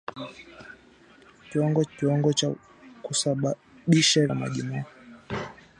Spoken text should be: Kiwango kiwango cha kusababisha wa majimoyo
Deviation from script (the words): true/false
false